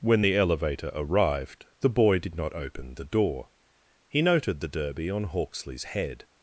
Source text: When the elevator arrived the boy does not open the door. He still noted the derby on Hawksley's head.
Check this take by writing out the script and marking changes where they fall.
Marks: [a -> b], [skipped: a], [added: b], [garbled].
When the elevator arrived the boy [does -> did] not open the door. He [skipped: still] noted the derby on Hawksley's head.